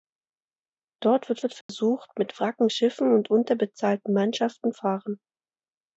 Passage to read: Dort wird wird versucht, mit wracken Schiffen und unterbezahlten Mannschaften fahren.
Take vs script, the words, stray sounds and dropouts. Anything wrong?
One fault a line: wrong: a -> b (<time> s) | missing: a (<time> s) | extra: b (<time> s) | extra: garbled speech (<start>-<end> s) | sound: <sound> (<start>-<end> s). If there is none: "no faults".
sound: dropout (1.6-1.7 s)